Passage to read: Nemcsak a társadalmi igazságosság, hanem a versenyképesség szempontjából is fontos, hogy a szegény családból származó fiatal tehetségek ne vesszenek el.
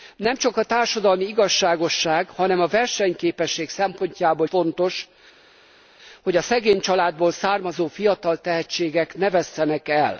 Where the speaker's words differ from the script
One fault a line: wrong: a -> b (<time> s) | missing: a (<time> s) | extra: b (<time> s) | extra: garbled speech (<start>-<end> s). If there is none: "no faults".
missing: is (4.5 s)